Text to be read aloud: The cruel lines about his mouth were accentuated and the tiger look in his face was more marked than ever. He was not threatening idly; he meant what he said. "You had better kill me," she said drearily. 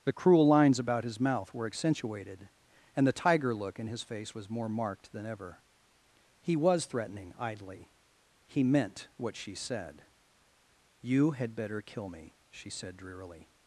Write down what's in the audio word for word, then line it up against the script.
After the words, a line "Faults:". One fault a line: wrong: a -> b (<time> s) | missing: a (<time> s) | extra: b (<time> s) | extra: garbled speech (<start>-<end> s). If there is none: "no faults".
The cruel lines about his mouth were accentuated and the tiger look in his face was more marked than ever. He was threatening idly; he meant what she said. "You had better kill me," she said drearily.
Faults:
missing: not (6.9 s)
wrong: he -> she (9.4 s)